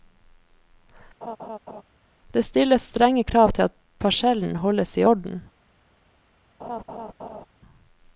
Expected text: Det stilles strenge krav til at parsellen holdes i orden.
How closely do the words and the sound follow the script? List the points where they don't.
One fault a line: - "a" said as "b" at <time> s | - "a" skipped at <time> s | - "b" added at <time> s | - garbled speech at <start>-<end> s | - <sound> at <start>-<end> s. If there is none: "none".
- laugh at 1.2-1.8 s
- laugh at 6.6-7.5 s